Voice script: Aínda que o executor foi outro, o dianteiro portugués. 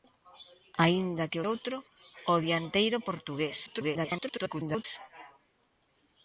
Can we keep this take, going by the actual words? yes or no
no